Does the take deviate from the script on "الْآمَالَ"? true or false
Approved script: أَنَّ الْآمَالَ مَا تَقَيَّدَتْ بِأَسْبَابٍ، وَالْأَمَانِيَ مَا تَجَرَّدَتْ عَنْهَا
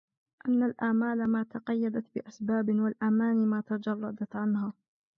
false